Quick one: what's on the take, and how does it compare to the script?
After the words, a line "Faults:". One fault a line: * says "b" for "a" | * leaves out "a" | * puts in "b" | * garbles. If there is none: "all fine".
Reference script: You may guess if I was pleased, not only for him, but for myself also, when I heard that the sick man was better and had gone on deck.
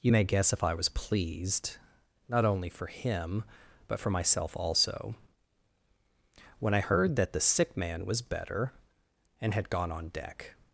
You may guess if I was pleased, not only for him, but for myself also, when I heard that the sick man was better and had gone on deck.
Faults:
all fine